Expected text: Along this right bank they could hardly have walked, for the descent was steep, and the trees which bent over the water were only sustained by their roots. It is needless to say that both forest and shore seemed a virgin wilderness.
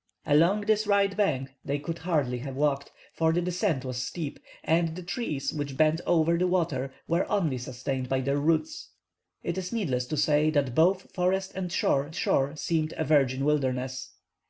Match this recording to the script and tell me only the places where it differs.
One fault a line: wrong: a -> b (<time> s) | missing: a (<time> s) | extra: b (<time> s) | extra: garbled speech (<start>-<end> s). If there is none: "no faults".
extra: shore (12.1 s)